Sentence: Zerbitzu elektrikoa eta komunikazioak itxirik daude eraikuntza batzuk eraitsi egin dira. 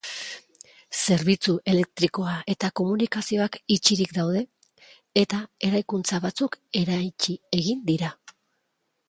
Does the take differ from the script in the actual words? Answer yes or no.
yes